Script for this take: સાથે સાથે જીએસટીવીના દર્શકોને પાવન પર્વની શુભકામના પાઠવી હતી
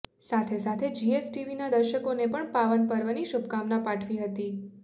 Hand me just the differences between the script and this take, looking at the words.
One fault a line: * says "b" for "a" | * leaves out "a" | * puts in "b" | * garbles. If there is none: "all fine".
* puts in "પણ"